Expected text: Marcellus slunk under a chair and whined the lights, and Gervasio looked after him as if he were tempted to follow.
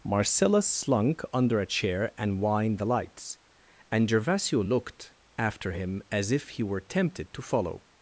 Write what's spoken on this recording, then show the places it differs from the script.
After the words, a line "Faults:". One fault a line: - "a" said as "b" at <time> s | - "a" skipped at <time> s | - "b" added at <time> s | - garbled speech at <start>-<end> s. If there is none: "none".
Marcellus slunk under a chair and whined the lights, and Gervasio looked after him as if he were tempted to follow.
Faults:
none